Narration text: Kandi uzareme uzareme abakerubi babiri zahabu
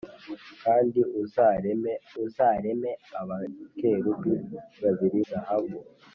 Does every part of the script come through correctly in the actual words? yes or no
yes